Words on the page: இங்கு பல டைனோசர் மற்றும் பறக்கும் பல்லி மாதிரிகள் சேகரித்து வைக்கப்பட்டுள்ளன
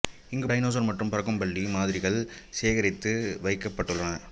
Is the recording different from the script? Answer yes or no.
yes